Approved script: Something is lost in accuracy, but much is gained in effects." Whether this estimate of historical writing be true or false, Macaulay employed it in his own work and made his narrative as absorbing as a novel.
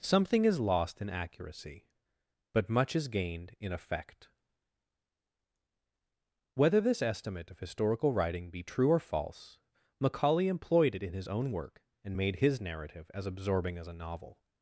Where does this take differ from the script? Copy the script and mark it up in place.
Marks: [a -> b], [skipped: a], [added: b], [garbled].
Something is lost in accuracy, but much is gained in [effects." -> effect] Whether this estimate of historical writing be true or false, Macaulay employed it in his own work and made his narrative as absorbing as a novel.